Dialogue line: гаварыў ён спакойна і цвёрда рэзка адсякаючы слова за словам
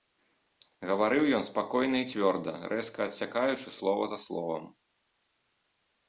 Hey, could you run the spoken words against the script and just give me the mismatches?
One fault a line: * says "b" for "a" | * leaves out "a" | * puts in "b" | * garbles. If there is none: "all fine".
all fine